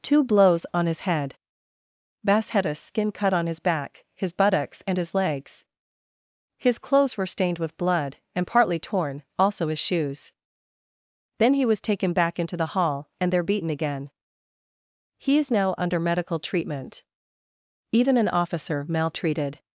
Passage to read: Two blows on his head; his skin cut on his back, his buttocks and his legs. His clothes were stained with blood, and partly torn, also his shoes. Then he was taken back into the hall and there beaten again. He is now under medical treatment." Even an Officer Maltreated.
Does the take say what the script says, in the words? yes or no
no